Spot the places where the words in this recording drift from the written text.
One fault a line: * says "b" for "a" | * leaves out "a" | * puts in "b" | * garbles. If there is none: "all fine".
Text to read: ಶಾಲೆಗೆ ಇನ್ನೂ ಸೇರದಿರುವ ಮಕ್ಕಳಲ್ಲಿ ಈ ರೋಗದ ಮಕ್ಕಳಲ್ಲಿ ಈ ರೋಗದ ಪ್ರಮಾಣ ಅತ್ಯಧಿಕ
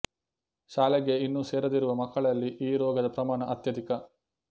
* leaves out "ಮಕ್ಕಳಲ್ಲಿ ಈ ರೋಗದ"